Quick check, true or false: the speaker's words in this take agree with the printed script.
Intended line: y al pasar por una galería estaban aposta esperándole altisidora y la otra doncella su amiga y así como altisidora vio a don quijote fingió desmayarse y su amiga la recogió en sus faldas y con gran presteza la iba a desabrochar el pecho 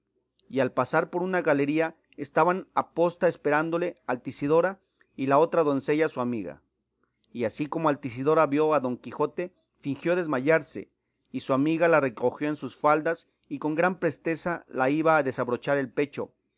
true